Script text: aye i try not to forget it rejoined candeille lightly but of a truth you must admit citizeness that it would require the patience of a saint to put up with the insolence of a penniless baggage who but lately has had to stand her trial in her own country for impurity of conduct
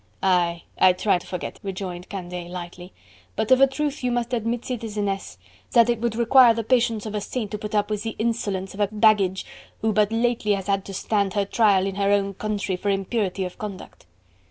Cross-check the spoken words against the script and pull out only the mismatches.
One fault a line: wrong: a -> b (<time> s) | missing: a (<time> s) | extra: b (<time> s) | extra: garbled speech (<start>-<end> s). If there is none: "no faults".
missing: not (1.2 s)
missing: it (1.6 s)
missing: penniless (8.9 s)